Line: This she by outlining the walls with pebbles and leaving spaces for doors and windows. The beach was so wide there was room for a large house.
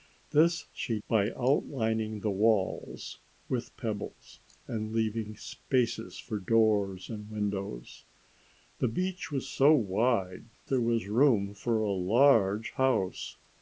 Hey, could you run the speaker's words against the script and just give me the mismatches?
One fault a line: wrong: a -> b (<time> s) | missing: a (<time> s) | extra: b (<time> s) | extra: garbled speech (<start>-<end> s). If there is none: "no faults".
no faults